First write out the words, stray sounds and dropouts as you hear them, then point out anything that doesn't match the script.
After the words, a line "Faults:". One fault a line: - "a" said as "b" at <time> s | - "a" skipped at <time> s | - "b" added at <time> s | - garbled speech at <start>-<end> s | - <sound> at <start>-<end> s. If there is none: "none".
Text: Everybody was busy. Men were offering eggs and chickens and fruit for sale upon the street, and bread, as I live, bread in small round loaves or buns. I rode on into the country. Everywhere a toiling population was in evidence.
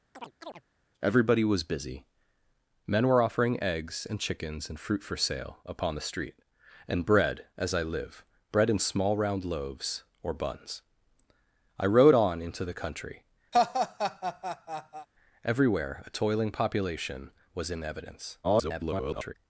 Everybody was busy. Men were offering eggs and chickens and fruit for sale upon the street, and bread, as I live, bread in small round loaves or buns. I rode on into the country. Everywhere a toiling population was in evidence. [garbled]
Faults:
- chirp at 0.1-0.6 s
- laugh at 13.5-15.1 s
- garbled speech at 18.4-19.3 s